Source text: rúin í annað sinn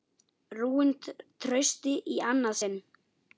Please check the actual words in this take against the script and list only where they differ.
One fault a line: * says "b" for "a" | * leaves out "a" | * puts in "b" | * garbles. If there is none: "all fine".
* puts in "trausti"